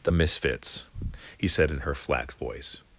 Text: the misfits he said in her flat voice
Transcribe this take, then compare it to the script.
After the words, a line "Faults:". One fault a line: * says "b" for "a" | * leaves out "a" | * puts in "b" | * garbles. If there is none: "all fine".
the misfits he said in her flat voice
Faults:
all fine